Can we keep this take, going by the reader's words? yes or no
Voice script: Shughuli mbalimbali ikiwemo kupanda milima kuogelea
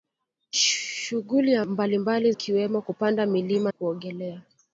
yes